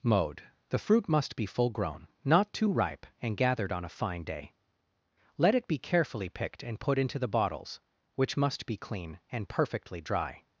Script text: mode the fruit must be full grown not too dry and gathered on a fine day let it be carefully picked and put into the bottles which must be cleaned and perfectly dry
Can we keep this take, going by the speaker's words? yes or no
no